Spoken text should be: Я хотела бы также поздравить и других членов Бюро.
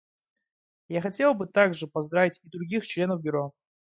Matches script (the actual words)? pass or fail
pass